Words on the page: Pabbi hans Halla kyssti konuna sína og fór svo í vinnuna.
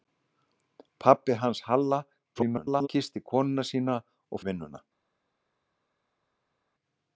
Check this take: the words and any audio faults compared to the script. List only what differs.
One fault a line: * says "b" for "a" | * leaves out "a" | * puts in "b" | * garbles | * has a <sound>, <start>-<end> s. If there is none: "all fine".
* garbles
* leaves out "fór svo"